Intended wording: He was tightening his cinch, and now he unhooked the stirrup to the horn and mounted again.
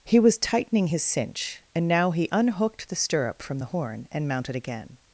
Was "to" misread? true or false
true